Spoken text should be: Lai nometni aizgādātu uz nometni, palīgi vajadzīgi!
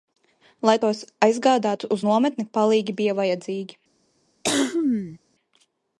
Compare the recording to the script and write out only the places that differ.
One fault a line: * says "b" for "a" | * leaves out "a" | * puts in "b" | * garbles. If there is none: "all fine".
* says "tos" for "nometni"
* puts in "bija"